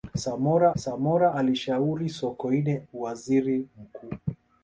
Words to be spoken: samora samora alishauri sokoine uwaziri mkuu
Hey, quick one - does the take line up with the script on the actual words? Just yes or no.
yes